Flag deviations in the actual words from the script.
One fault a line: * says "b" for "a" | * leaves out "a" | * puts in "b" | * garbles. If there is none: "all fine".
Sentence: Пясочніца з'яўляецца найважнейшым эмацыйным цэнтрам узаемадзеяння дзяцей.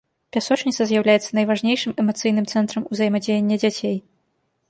all fine